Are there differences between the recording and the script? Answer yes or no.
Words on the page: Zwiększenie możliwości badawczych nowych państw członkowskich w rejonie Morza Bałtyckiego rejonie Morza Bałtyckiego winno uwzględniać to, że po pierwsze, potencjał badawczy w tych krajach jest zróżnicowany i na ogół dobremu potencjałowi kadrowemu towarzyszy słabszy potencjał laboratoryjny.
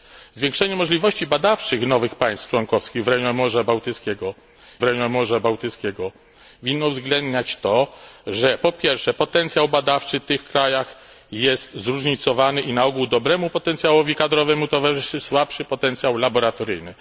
no